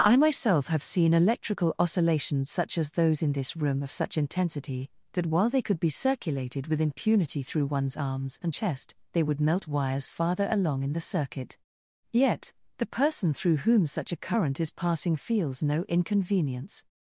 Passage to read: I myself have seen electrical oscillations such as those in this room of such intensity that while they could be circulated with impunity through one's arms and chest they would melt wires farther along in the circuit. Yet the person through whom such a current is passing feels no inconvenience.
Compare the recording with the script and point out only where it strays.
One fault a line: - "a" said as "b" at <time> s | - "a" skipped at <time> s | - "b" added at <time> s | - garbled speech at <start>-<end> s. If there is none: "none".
none